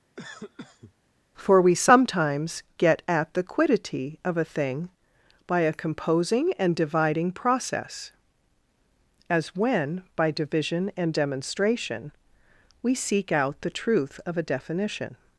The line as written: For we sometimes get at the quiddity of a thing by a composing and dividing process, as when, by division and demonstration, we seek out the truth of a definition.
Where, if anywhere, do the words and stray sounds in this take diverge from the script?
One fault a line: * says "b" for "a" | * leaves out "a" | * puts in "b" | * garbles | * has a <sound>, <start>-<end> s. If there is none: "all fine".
* has a cough, 0.2-0.9 s